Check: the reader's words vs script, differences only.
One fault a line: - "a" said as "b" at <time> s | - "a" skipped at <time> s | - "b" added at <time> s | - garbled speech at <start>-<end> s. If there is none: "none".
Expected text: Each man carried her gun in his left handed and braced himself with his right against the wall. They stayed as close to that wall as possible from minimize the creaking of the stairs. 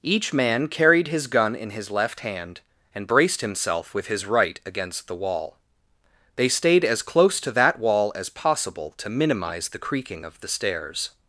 - "her" said as "his" at 1.1 s
- "handed" said as "hand" at 2.2 s
- "from" said as "to" at 9.0 s